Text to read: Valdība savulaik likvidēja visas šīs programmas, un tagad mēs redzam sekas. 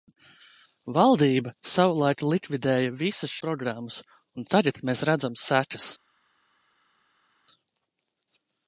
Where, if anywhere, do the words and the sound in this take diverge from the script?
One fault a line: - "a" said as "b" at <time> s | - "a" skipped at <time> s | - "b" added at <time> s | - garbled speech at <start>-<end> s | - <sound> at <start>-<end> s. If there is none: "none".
- "šīs" skipped at 3.4 s